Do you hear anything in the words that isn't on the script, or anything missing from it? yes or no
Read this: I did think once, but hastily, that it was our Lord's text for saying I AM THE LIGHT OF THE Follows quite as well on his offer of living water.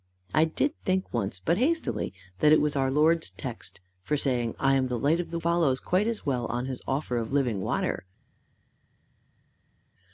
no